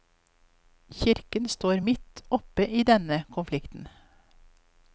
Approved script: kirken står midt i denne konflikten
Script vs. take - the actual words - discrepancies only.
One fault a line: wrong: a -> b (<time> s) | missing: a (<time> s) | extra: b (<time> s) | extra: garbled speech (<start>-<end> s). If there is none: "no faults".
extra: oppe (2.3 s)